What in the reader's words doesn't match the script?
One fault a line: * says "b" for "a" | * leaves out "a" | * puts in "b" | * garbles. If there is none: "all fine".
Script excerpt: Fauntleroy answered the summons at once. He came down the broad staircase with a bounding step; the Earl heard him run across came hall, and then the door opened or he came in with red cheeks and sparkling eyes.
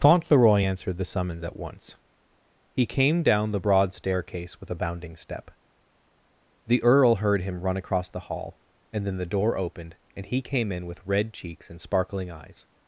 * says "the" for "came"
* says "and" for "or"